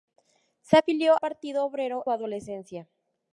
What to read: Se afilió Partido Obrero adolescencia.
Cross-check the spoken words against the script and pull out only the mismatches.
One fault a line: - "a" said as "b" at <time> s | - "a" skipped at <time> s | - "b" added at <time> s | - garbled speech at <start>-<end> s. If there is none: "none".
none